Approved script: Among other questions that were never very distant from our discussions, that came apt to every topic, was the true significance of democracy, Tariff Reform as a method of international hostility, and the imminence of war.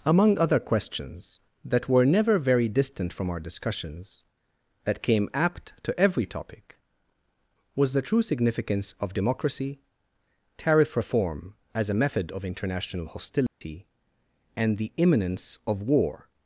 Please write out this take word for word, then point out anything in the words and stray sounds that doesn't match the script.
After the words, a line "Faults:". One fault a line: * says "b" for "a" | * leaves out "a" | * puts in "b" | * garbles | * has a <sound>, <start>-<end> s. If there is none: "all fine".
Among other questions that were never very distant from our discussions, that came apt to every topic, was the true significance of democracy, Tariff Reform as a method of international hostility, and the imminence of war.
Faults:
* has a dropout, 13.5-13.6 s